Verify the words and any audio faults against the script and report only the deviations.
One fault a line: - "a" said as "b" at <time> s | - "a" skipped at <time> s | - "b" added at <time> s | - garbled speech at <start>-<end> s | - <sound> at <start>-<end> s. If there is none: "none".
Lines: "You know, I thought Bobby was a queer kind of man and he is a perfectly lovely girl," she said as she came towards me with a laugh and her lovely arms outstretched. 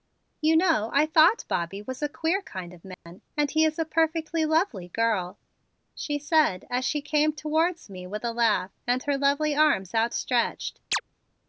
- dropout at 2.9-3.1 s
- chirp at 10.9-11.0 s